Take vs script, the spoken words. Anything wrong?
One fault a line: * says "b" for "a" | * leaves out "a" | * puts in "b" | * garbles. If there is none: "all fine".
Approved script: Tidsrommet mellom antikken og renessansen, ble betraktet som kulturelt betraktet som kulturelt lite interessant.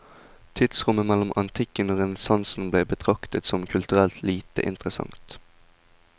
* leaves out "betraktet som kulturelt"